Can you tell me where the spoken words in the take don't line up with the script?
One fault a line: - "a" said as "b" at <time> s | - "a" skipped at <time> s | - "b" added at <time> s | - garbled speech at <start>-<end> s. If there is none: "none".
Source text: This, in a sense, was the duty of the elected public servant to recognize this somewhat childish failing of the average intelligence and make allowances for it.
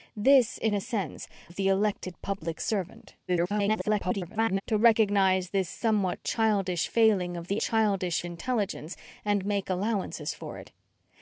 - "was the duty" skipped at 1.3 s
- garbled speech at 3.3-4.6 s
- "average" said as "childish" at 7.6 s